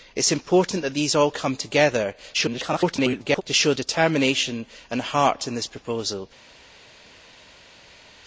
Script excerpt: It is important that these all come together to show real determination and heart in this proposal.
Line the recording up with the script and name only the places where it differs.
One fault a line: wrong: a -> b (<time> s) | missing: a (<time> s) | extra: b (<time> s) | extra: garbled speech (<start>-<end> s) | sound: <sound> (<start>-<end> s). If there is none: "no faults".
extra: garbled speech (2.3-3.4 s)
missing: real (3.7 s)